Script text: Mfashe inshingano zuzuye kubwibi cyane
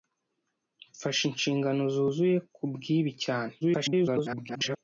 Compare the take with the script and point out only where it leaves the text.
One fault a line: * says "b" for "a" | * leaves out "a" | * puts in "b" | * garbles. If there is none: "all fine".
* garbles